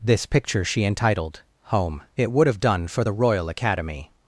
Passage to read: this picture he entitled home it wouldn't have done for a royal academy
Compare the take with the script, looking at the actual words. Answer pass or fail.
fail